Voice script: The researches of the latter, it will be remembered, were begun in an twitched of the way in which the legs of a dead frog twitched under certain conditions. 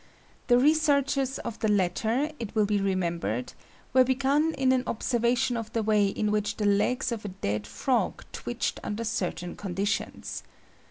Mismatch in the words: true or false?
true